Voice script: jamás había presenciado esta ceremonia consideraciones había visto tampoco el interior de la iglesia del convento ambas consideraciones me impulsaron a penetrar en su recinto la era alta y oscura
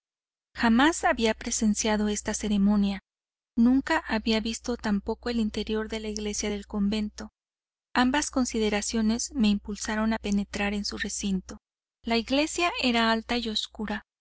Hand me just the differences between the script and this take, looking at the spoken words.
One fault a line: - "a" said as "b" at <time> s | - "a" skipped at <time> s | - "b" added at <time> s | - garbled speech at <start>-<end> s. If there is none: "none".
- "consideraciones" said as "nunca" at 3.5 s
- "iglesia" added at 12.2 s